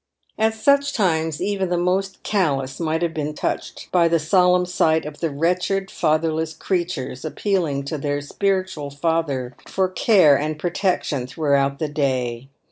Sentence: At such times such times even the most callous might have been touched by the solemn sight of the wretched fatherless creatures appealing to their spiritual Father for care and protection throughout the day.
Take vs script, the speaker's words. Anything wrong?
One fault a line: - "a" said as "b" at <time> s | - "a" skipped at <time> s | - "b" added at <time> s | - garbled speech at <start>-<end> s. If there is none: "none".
- "such times" skipped at 1.4 s